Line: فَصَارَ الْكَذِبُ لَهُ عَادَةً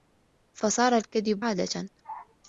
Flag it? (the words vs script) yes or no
yes